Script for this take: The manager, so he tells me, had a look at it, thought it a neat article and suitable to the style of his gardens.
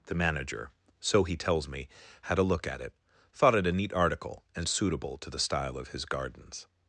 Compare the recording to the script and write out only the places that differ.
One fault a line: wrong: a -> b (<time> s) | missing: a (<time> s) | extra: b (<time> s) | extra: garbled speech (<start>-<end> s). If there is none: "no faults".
no faults